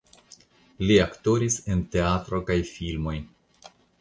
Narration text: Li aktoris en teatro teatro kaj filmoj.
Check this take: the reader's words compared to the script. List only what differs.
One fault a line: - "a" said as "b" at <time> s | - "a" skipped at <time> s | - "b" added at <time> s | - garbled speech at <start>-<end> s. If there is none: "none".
- "teatro" skipped at 2.4 s